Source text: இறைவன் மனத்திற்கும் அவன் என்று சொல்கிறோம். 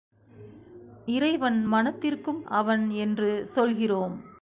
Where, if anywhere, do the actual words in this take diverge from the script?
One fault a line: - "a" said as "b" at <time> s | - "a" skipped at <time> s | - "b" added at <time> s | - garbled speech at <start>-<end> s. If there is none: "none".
none